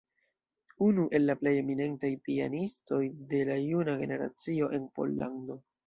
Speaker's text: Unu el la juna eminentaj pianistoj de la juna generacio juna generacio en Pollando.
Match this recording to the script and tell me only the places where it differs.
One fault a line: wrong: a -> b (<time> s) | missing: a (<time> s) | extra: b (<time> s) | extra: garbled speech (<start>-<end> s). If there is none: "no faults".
wrong: juna -> plej (1.4 s)
missing: juna generacio (4.7 s)